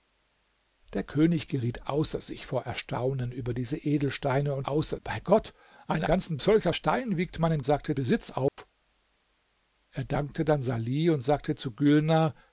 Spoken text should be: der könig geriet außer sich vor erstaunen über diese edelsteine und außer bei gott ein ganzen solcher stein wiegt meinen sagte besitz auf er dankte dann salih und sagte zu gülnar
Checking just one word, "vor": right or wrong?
right